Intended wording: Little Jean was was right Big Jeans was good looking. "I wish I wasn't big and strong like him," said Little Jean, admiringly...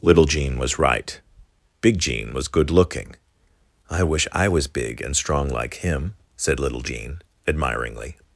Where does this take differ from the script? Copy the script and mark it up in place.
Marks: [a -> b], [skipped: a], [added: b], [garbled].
Little Jean was [skipped: was] right Big [Jeans -> Jean] was good looking. "I wish I [wasn't -> was] big and strong like him," said Little Jean, admiringly...